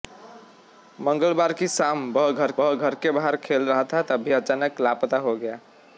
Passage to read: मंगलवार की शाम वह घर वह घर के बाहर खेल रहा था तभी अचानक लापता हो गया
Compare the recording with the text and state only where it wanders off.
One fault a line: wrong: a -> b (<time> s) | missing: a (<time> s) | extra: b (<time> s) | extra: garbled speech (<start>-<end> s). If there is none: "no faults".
no faults